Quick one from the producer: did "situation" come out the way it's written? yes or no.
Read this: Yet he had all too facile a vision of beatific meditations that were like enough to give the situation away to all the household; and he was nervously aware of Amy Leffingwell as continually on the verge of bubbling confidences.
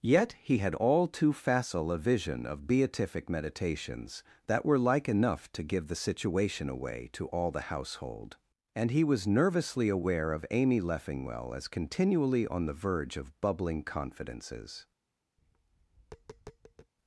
yes